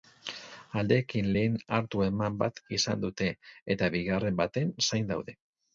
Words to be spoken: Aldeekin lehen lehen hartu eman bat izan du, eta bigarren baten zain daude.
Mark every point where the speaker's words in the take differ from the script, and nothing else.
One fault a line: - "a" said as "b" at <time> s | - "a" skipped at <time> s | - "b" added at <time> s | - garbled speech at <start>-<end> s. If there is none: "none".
- "lehen" skipped at 1.6 s
- "du" said as "dute" at 3.1 s